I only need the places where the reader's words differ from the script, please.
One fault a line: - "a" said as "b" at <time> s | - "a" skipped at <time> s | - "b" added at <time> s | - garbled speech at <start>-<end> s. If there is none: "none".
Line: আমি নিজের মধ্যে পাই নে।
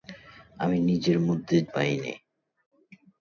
none